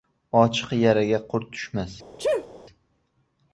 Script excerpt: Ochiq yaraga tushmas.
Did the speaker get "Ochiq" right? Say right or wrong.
right